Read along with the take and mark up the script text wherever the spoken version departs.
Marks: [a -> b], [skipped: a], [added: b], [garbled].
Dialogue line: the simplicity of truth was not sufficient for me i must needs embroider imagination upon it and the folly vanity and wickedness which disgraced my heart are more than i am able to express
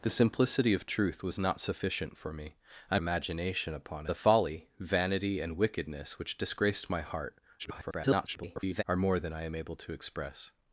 the simplicity of truth was not sufficient for me i [skipped: must needs embroider] imagination upon [skipped: it and] the folly vanity and wickedness which disgraced my heart [garbled] are more than i am able to express